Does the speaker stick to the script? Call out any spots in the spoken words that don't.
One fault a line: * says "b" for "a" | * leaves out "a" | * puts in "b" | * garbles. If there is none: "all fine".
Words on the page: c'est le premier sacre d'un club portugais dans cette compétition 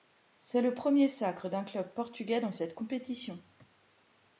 all fine